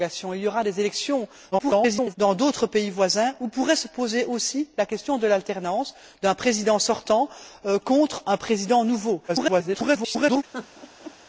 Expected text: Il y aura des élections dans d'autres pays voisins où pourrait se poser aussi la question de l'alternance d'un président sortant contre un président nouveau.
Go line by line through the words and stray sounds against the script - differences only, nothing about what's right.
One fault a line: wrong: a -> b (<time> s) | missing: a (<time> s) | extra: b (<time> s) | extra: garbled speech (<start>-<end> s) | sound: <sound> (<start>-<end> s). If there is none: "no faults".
extra: garbled speech (1.5-2.2 s)
extra: garbled speech (9.3-10.4 s)
sound: laugh (10.5-11.1 s)